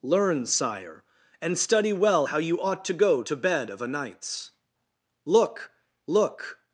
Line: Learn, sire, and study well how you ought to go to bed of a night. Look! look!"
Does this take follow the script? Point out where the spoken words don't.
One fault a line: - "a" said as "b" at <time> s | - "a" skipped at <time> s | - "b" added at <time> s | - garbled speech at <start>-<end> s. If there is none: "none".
- "night" said as "nights" at 3.9 s